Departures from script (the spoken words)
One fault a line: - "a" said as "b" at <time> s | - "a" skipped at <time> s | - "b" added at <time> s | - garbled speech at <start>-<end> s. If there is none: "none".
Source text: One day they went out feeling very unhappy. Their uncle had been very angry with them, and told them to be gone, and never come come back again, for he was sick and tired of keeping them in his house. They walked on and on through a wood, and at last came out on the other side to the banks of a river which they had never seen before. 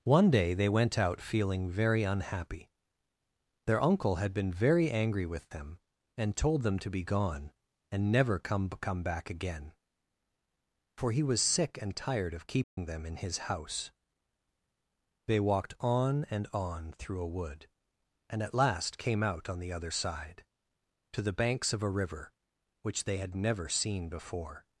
none